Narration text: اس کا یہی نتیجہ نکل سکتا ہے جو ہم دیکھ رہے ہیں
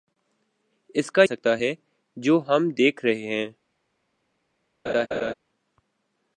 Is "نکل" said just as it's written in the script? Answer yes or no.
no